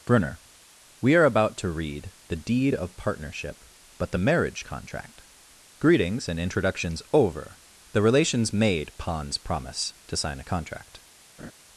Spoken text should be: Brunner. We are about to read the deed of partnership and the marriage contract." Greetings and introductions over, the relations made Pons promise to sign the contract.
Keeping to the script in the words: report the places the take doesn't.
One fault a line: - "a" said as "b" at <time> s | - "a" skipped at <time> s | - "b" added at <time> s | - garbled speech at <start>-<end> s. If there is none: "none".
- "and" said as "but" at 4.0 s
- "the" said as "a" at 10.4 s